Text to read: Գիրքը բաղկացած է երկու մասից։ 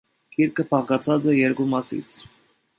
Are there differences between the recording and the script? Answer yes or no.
no